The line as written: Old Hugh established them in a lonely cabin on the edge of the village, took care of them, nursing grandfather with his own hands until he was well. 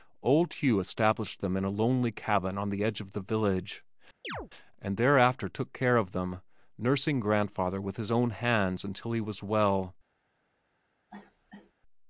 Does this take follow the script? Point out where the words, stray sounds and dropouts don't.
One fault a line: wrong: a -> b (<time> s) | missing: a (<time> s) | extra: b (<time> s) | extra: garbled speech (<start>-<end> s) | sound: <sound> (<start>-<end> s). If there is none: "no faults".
sound: chirp (4.2-4.5 s)
extra: and thereafter (4.8 s)
sound: cough (11.1-11.7 s)